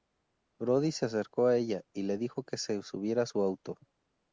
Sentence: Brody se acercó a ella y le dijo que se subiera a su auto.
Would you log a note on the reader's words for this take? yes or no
no